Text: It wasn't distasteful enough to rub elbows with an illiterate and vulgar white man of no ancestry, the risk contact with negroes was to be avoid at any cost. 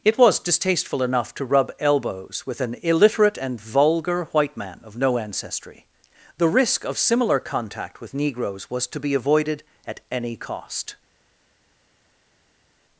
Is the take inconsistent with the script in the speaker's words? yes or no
yes